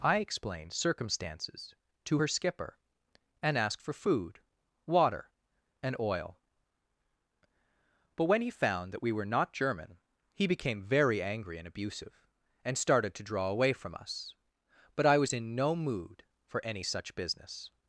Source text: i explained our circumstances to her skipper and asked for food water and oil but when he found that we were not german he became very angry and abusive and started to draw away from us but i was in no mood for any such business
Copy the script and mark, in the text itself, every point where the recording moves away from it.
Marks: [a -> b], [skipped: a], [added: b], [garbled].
i explained [skipped: our] circumstances to her skipper and asked for food water and oil but when he found that we were not german he became very angry and abusive and started to draw away from us but i was in no mood for any such business